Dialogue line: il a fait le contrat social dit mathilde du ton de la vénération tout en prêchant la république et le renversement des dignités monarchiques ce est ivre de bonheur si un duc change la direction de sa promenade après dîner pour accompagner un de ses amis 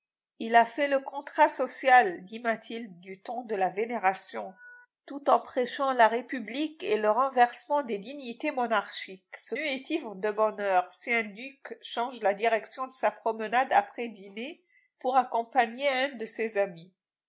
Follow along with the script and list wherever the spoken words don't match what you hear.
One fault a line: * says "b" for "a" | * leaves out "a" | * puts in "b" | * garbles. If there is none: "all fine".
all fine